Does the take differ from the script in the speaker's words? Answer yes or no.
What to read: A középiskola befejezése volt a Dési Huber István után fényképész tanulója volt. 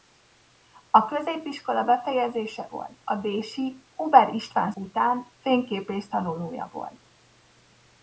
no